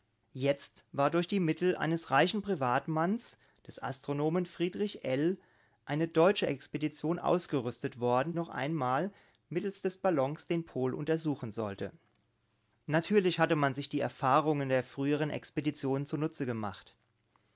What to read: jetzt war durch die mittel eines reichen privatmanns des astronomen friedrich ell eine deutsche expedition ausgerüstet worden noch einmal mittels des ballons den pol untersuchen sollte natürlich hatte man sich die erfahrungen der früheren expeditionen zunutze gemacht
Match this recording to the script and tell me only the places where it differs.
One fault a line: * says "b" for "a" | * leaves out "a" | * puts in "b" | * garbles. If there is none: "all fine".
all fine